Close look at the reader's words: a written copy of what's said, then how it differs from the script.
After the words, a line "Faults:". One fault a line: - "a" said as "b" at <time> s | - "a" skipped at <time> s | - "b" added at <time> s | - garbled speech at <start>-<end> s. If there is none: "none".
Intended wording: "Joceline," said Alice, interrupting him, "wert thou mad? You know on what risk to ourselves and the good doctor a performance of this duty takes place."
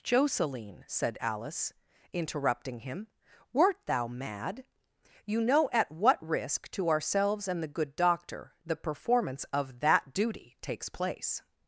"Joceline," said Alice, interrupting him, "wert thou mad? You know at what risk to ourselves and the good doctor the performance of that duty takes place."
Faults:
- "on" said as "at" at 5.7 s
- "a" said as "the" at 8.6 s
- "this" said as "that" at 9.8 s